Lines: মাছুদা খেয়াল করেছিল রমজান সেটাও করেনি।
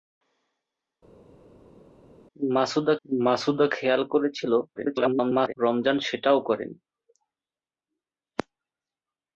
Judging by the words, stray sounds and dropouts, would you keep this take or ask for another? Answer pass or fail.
fail